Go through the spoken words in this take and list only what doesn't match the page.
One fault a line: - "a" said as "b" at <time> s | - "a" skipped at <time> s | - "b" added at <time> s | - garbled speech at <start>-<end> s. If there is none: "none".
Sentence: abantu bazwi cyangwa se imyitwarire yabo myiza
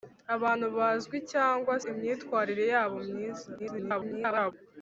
- "se" skipped at 1.7 s
- garbled speech at 3.6-4.5 s